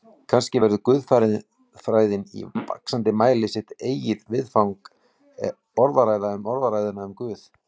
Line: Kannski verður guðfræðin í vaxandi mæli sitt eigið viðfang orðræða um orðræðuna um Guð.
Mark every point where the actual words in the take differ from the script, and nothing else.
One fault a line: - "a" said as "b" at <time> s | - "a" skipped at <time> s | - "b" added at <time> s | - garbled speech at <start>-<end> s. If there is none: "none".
none